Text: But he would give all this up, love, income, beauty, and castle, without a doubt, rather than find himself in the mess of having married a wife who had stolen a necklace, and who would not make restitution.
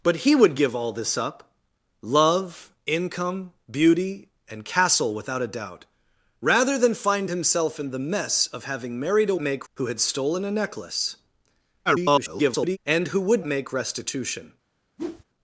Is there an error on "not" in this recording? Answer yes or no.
yes